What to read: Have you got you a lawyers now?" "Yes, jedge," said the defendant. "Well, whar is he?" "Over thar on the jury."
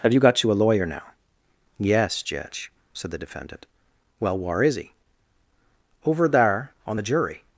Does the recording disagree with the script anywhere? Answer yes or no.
yes